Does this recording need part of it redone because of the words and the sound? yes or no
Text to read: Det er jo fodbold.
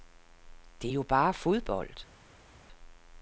yes